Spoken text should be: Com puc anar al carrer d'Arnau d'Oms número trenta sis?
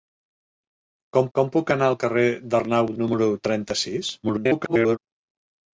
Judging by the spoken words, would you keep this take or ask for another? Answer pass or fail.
fail